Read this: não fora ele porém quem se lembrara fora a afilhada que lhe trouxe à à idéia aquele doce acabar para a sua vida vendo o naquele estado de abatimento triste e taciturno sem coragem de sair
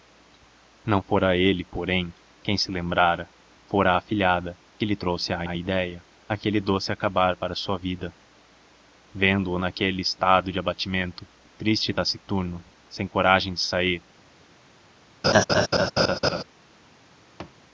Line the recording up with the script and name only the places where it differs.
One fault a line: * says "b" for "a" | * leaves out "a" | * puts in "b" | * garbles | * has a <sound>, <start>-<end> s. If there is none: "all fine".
* has a laugh, 15.2-16.4 s
* has a thud, 17.4-17.6 s